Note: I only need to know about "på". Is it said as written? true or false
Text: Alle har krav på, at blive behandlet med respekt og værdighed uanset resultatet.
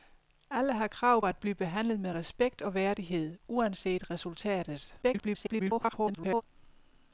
false